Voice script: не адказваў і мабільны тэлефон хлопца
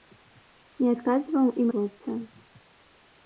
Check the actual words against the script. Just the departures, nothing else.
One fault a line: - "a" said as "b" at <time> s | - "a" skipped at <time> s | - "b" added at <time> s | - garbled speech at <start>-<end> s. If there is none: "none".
- "мабільны тэлефон" skipped at 1.6 s